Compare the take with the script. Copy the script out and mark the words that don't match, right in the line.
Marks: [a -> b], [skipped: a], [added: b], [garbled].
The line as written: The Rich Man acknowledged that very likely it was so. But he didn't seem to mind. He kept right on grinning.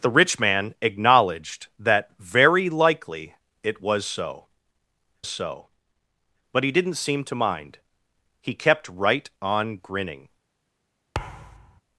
The Rich Man acknowledged that very likely it was so. [added: so] But he didn't seem to mind. He kept right on grinning.